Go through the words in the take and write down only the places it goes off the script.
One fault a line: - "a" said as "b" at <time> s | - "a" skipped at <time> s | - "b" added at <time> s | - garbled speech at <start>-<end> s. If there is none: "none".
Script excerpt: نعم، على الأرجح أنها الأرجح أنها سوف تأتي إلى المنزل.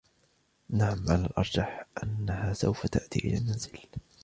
- "الأرجح أنها" skipped at 2.5 s